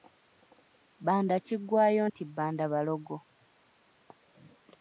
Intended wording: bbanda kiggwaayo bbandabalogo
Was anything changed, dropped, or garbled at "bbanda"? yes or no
no